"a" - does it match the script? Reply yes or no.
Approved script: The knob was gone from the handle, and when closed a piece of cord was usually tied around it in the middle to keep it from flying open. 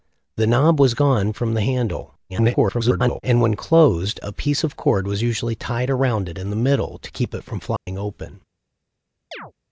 yes